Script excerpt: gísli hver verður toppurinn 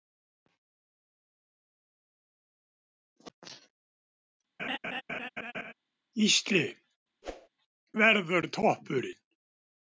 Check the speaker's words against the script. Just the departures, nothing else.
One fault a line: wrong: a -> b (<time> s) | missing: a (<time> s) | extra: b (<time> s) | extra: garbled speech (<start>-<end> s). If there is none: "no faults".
missing: hver (6.6 s)